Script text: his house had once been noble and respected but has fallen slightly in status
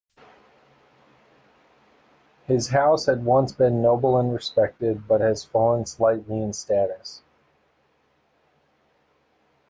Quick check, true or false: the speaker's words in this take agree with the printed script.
true